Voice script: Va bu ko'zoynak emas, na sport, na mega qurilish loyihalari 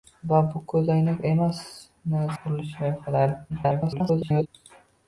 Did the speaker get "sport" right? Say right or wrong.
wrong